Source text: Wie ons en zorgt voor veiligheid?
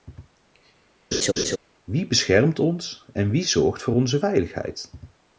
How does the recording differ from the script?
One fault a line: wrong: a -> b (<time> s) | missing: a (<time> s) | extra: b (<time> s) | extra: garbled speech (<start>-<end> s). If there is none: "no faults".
extra: beschermt (2.1 s)
extra: wie (3.3 s)
extra: onze (3.9 s)